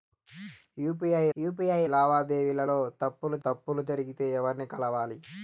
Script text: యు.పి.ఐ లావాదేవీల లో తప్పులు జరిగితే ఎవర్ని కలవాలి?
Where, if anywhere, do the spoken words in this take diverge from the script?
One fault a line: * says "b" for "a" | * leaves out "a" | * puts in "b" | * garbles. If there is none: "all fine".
* puts in "యు.పి.ఐ"
* puts in "తప్పులు"